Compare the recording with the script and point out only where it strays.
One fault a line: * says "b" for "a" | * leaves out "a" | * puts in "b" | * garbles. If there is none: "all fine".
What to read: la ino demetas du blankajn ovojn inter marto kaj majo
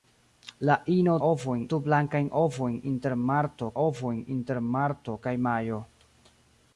* says "ovojn" for "demetas"
* puts in "ovojn inter marto"